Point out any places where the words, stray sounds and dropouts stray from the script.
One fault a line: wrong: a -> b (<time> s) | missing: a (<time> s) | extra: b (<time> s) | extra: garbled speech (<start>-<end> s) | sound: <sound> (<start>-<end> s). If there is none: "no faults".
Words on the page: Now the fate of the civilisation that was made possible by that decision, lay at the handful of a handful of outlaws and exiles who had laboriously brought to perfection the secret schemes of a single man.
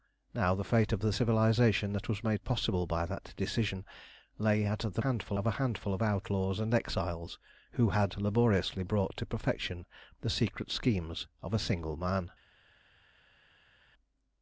no faults